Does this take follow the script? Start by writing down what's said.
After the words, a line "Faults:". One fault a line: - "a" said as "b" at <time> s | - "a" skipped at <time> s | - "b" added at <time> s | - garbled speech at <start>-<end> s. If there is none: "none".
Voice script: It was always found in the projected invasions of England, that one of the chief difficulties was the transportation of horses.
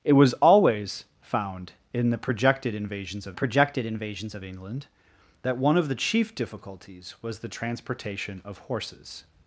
It was always found in the projected invasions of projected invasions of England, that one of the chief difficulties was the transportation of horses.
Faults:
- "projected invasions of" added at 3.3 s